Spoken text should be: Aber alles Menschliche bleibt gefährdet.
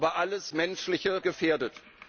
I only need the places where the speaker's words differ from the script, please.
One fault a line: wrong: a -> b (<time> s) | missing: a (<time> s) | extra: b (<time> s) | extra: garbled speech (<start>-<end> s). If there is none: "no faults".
missing: bleibt (1.2 s)